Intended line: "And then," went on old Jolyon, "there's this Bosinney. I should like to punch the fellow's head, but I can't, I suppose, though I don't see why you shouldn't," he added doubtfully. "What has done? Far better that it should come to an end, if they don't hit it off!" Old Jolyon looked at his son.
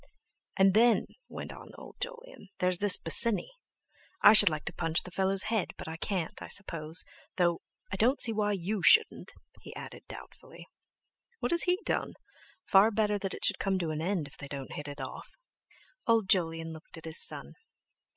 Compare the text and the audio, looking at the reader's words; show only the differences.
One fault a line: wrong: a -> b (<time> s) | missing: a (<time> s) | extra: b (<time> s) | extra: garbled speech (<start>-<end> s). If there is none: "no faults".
extra: he (11.6 s)